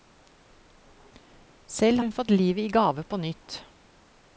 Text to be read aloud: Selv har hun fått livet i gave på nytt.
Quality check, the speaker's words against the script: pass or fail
fail